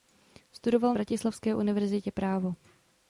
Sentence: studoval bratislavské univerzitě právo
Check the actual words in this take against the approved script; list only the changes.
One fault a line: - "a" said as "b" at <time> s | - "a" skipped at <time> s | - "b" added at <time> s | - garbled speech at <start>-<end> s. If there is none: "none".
none